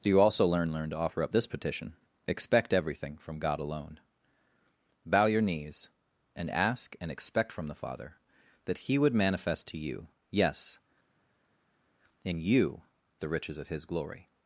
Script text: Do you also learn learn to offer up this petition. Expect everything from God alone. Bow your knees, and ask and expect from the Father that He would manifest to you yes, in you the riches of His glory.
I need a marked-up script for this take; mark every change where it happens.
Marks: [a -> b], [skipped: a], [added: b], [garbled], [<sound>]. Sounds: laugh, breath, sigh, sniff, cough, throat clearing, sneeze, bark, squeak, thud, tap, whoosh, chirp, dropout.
Do you also learn learn to offer up this petition. Expect everything from God alone. Bow your knees, and ask and expect from the Father that He would manifest to you yes, in you the riches of His glory.